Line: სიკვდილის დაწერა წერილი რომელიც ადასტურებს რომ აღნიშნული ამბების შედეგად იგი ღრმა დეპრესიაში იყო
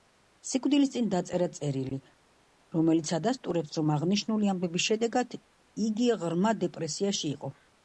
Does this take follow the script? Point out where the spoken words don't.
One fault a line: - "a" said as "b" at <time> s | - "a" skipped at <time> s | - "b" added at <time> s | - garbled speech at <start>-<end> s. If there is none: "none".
- "წინ" added at 0.9 s